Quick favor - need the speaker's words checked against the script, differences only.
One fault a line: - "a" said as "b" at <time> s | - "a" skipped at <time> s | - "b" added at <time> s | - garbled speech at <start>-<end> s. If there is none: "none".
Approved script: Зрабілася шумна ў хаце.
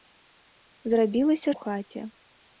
- "шумна" skipped at 1.5 s